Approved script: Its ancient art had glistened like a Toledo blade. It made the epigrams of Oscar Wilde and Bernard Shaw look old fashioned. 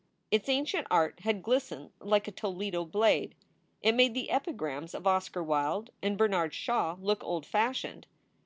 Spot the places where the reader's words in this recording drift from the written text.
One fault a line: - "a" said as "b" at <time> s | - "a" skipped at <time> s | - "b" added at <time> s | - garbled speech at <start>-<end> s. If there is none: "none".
none